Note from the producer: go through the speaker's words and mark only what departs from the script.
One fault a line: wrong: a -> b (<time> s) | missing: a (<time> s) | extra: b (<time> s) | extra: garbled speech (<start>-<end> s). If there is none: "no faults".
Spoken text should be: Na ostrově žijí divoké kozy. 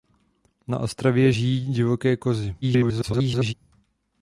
extra: garbled speech (2.6-3.5 s)